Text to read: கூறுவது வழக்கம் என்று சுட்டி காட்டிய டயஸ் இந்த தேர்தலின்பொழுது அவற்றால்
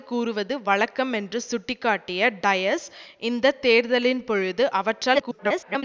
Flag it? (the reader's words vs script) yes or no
yes